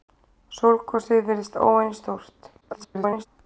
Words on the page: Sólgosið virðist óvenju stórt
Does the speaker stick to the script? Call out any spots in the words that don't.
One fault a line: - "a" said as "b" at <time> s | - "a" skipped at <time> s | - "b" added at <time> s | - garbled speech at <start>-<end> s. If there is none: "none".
- garbled speech at 2.6-3.3 s